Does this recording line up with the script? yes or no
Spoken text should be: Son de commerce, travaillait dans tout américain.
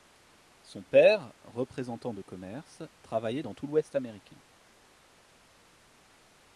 no